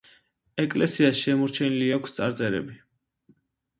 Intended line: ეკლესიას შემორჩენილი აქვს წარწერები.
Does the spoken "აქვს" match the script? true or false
true